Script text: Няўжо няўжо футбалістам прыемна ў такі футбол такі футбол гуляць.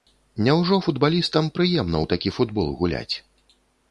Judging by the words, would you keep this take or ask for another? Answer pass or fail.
fail